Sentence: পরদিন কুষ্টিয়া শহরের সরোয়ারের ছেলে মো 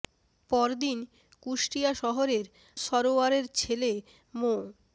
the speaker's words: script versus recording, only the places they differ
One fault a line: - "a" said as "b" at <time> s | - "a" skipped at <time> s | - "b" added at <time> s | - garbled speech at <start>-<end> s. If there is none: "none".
none